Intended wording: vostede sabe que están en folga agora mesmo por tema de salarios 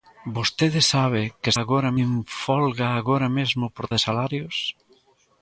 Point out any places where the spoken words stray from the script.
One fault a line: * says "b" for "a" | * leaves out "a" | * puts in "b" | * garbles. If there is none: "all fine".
* says "agora" for "están"
* leaves out "tema"